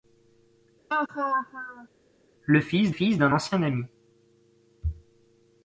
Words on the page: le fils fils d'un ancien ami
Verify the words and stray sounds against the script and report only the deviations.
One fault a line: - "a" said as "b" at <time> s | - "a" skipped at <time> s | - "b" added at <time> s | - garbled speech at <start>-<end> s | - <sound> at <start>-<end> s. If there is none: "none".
- laugh at 0.9-1.9 s